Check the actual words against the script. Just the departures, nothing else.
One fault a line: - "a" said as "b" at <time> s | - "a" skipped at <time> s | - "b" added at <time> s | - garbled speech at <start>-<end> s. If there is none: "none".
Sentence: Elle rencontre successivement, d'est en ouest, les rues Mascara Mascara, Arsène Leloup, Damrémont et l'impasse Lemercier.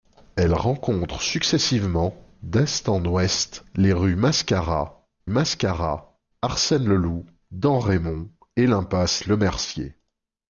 none